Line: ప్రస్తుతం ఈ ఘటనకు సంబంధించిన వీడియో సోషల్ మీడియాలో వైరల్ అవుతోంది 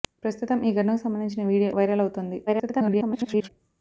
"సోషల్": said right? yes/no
no